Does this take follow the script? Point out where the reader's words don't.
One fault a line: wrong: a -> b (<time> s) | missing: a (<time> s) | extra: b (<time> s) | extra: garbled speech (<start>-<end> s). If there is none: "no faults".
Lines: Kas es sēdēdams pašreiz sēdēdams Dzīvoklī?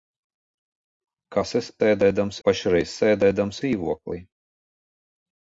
no faults